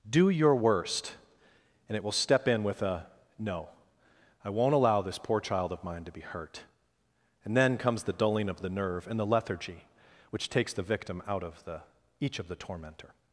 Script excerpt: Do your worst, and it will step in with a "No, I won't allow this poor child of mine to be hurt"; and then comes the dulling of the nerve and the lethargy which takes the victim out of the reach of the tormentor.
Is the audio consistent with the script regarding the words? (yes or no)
no